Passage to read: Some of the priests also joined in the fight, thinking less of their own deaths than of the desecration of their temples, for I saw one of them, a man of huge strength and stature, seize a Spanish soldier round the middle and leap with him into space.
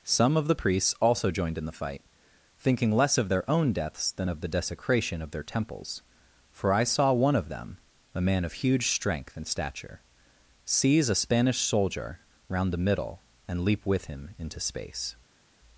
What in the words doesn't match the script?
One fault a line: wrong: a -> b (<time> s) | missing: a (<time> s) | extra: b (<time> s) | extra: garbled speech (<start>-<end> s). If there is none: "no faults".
no faults